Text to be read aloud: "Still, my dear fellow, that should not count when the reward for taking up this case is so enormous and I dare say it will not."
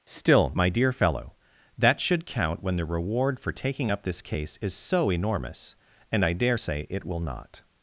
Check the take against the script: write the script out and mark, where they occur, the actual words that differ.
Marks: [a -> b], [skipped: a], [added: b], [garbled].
"Still, my dear fellow, that should [skipped: not] count when the reward for taking up this case is so enormous and I dare say it will not."